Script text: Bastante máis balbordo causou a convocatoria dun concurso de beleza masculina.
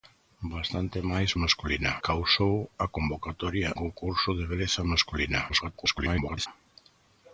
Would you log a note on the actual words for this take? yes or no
yes